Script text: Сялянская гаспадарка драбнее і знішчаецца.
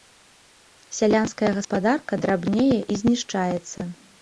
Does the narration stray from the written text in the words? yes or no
no